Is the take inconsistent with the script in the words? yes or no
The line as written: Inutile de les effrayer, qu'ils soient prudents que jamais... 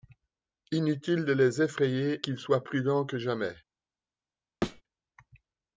no